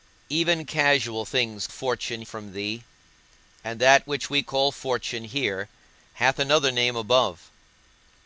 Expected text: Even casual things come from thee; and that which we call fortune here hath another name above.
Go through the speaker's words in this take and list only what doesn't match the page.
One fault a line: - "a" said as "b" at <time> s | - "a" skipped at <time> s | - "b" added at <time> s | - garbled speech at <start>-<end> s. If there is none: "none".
- "come" said as "fortune" at 1.7 s